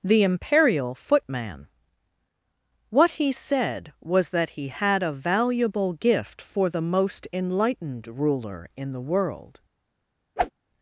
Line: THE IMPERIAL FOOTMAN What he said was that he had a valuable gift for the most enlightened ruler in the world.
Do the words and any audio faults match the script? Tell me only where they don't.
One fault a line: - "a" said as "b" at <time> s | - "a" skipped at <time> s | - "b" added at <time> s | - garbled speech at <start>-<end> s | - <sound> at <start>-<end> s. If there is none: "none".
- whoosh at 10.4-10.5 s